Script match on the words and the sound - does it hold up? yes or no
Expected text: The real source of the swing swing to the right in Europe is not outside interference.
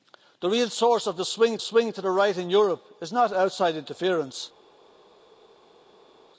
yes